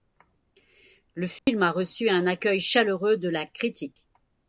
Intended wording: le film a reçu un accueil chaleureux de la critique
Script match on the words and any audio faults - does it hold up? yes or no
no